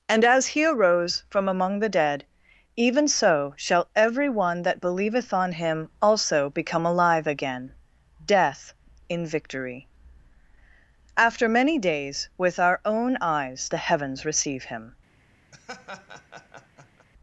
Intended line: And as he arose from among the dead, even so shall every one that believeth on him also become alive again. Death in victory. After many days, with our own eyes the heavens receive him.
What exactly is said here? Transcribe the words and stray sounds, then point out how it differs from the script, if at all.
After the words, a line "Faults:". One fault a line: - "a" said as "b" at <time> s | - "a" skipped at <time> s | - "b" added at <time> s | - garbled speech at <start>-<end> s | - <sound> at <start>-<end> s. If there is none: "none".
And as he arose from among the dead, even so shall every one that believeth on him also become alive again. Death in victory. After many days, with our own eyes the heavens receive him.
Faults:
- laugh at 15.5-17.1 s